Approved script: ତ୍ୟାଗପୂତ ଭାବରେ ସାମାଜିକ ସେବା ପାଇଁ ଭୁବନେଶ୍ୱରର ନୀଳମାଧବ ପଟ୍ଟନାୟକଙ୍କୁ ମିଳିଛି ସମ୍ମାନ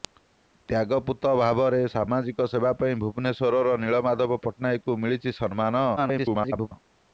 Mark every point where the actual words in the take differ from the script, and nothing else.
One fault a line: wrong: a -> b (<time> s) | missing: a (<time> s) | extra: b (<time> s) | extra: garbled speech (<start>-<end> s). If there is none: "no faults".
extra: garbled speech (6.0-6.7 s)